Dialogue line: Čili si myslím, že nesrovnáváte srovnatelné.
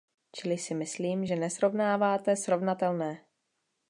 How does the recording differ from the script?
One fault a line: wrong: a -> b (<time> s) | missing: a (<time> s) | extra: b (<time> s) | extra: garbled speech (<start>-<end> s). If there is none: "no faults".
no faults